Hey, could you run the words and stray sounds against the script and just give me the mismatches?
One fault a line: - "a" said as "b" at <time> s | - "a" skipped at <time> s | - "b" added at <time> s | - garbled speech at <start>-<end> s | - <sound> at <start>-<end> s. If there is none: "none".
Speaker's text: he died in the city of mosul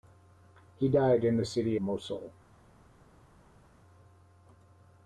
- "of" skipped at 1.8 s